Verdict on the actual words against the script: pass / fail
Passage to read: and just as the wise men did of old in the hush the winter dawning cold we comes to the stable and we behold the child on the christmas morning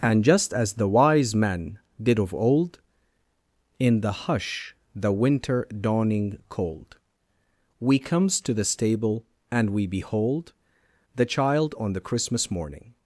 pass